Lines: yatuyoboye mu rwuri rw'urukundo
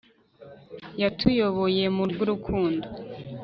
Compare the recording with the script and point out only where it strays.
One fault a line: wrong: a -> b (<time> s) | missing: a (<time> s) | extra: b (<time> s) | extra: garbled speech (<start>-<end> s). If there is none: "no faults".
missing: rwuri (2.0 s)